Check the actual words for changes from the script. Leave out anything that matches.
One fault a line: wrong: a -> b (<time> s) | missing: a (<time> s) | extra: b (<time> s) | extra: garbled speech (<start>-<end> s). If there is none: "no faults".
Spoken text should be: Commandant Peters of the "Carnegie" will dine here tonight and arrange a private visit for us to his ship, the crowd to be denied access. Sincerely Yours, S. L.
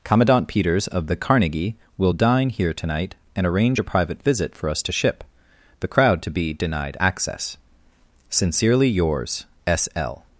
missing: his (4.9 s)